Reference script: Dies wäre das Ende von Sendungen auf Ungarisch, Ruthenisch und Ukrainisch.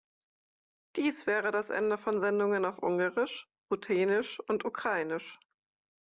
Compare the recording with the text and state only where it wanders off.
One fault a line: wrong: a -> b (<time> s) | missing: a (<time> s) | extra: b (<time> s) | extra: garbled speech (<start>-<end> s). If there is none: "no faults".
no faults